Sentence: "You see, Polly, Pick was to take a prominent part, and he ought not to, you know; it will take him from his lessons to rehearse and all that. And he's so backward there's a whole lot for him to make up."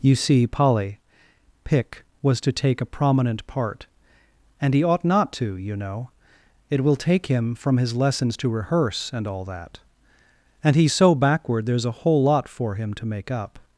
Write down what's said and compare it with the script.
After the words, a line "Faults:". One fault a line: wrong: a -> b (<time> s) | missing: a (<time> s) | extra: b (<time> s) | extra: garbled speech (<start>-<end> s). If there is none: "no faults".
"You see, Polly, Pick was to take a prominent part, and he ought not to, you know; it will take him from his lessons to rehearse and all that. And he's so backward there's a whole lot for him to make up."
Faults:
no faults